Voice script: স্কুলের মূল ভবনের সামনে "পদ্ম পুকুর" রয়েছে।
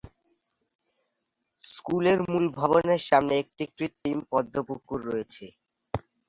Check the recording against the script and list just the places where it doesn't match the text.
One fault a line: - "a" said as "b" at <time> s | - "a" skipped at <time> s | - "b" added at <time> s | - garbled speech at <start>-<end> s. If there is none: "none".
- "একটি কৃত্রিম" added at 3.4 s